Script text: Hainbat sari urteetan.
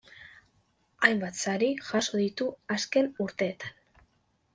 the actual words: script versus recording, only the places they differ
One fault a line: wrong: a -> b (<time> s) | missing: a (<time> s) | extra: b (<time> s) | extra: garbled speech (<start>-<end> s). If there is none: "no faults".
extra: jaso ditu azken (1.9 s)